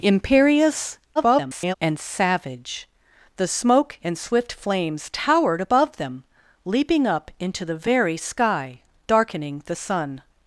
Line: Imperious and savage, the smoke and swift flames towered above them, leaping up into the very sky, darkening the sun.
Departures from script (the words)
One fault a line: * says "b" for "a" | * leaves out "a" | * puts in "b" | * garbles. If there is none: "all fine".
* garbles